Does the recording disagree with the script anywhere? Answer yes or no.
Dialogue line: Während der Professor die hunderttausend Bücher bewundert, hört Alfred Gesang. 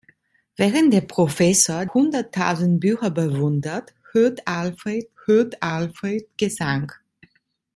yes